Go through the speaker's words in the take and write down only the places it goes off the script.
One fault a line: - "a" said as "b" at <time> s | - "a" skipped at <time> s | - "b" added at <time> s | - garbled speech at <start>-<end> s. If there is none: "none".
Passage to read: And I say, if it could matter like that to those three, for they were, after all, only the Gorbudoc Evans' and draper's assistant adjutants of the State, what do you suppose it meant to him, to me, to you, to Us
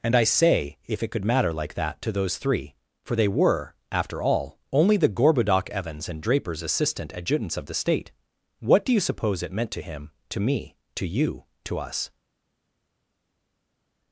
none